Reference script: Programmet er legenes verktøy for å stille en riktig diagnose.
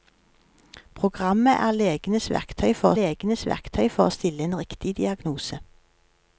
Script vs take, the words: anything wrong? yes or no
yes